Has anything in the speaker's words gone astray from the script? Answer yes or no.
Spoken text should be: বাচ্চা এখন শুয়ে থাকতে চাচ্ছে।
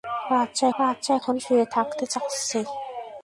yes